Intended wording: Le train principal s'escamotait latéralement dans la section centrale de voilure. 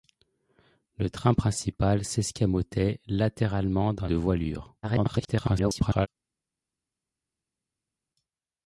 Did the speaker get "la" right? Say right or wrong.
wrong